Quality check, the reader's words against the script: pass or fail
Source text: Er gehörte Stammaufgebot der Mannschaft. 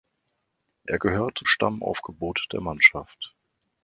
pass